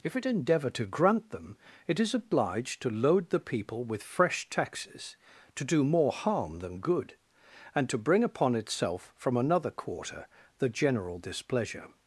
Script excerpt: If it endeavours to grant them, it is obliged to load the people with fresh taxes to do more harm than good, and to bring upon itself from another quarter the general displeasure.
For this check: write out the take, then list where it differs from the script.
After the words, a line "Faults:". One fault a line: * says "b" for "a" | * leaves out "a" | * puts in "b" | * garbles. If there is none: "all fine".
If it endeavour to grant them, it is obliged to load the people with fresh taxes to do more harm than good, and to bring upon itself from another quarter the general displeasure.
Faults:
* says "endeavour" for "endeavours"